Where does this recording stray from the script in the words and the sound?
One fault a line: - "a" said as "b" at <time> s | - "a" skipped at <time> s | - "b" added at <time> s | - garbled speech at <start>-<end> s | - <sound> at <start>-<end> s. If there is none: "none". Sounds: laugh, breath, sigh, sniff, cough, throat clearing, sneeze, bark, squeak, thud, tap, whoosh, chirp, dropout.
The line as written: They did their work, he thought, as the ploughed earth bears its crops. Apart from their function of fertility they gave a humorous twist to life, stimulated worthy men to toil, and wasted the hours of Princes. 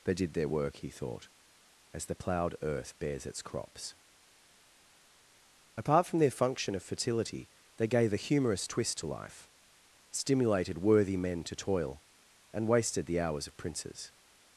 none